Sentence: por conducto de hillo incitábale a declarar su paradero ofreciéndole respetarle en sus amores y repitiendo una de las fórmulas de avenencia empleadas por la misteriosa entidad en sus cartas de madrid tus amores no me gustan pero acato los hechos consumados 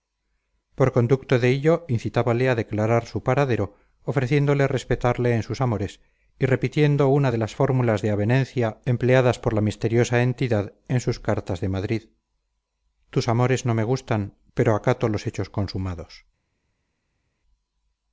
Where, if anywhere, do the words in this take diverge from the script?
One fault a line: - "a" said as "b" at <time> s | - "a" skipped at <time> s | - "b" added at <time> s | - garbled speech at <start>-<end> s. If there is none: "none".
none